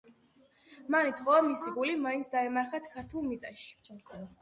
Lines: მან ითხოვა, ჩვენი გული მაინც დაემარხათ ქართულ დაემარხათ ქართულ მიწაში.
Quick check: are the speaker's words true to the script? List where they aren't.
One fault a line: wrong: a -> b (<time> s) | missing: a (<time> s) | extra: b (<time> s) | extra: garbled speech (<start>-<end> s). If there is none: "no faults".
wrong: ჩვენი -> მისი (1.5 s)
missing: დაემარხათ ქართულ (3.3 s)